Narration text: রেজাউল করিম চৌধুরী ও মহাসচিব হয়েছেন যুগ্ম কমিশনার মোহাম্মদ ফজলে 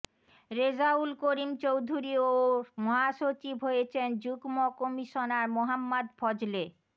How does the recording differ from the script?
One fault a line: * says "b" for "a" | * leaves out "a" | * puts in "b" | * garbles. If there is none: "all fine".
all fine